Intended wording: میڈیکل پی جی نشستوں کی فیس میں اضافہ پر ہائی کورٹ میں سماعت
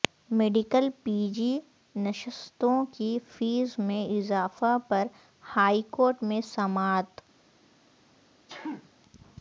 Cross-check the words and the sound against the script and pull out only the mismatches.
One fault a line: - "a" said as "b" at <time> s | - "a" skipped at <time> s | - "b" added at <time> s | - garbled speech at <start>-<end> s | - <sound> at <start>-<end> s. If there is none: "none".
- sneeze at 8.5-8.9 s